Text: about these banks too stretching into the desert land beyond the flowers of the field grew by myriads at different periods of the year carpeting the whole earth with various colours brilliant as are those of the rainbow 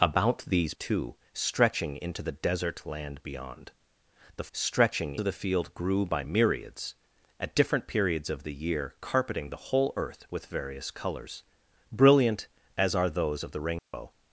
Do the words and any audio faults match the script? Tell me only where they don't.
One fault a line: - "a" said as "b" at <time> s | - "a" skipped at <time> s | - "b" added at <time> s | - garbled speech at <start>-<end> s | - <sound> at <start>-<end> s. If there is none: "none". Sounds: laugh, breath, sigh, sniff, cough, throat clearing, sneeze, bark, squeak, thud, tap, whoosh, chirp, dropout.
- "banks" skipped at 0.7 s
- "flowers" said as "stretching" at 4.5 s
- dropout at 13.8-13.9 s